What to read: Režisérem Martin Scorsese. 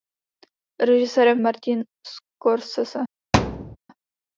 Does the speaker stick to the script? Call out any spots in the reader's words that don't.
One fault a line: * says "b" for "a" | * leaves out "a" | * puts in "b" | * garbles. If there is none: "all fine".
all fine